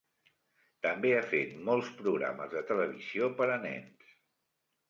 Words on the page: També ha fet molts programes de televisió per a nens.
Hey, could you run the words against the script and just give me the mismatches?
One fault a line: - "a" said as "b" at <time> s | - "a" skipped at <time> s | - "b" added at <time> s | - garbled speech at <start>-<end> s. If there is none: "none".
none